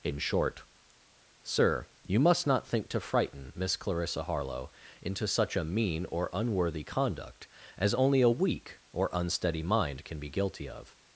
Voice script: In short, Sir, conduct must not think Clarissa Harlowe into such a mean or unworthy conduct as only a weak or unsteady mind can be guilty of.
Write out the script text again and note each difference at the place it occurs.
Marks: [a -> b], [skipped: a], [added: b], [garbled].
In short, Sir, [conduct -> you] must not think [added: to frighten Miss] Clarissa Harlowe into such a mean or unworthy conduct as only a weak or unsteady mind can be guilty of.